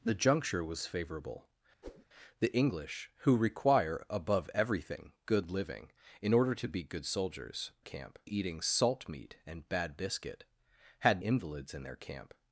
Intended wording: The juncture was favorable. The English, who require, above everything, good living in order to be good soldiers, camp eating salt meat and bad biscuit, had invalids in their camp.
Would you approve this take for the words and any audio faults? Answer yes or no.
no